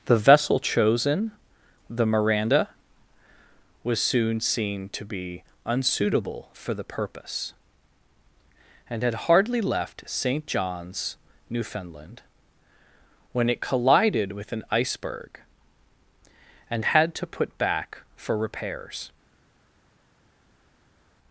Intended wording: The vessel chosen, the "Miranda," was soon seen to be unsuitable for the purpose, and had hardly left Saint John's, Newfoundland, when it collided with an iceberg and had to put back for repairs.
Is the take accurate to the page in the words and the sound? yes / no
yes